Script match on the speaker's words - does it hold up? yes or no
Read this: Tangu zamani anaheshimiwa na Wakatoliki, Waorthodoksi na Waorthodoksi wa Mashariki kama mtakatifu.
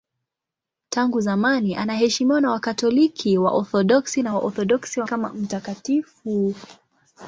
no